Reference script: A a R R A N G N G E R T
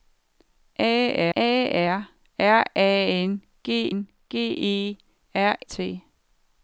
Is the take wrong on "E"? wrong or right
right